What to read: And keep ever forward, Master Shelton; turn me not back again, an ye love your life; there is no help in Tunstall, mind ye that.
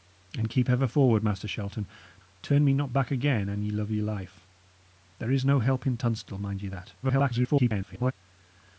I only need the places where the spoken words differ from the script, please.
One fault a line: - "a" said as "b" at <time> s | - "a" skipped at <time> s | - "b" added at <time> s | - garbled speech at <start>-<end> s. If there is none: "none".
- garbled speech at 7.0-8.1 s